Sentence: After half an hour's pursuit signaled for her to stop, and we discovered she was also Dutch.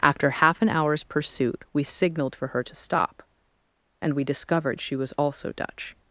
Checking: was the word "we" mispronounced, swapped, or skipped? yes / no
no